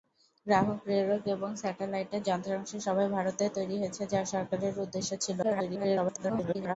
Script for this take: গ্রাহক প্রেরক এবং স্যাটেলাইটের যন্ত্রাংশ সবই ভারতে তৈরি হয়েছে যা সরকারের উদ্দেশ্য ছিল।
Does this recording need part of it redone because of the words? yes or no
yes